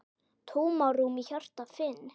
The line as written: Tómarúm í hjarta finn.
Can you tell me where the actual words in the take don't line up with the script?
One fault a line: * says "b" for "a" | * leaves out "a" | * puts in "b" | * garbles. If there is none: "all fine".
all fine